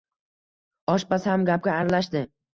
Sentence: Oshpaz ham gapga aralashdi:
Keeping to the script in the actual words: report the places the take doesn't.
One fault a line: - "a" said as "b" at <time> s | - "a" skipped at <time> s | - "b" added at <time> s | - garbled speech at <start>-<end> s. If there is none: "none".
none